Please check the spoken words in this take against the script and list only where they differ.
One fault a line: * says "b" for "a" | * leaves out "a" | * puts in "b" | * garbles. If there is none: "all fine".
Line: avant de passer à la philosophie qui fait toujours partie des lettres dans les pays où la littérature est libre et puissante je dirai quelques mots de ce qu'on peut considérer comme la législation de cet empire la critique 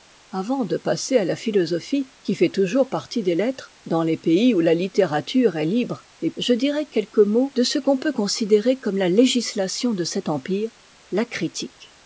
* leaves out "puissante"